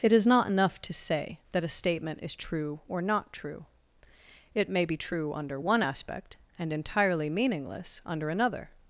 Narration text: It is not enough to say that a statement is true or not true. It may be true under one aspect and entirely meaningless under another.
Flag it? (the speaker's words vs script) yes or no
no